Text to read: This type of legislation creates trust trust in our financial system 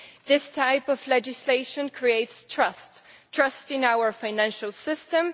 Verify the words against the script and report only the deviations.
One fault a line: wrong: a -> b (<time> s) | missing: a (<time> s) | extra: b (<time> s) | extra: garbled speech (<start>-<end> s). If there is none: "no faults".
no faults